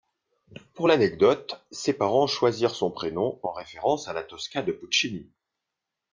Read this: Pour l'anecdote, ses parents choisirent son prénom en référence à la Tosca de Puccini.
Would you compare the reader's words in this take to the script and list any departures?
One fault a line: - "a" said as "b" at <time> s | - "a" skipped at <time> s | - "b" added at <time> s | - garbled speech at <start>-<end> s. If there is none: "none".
none